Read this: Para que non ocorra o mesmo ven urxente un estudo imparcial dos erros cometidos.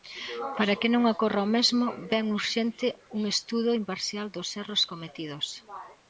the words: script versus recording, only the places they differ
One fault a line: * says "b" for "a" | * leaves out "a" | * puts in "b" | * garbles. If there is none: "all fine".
all fine